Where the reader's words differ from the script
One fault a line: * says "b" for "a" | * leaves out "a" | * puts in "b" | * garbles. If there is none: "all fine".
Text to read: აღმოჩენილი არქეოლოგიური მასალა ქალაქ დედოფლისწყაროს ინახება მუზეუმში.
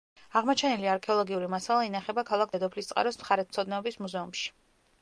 * puts in "ინახება"
* says "მხარეთმცოდნეობის" for "ინახება"